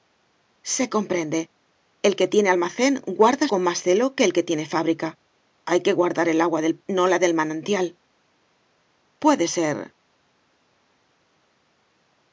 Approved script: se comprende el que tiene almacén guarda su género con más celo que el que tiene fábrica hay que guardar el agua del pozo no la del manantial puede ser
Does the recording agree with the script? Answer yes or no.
no